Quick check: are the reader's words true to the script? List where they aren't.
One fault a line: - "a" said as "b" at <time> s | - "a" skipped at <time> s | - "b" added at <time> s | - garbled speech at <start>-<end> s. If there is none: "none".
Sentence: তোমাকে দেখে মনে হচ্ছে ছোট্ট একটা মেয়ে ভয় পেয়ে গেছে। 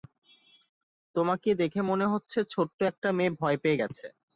none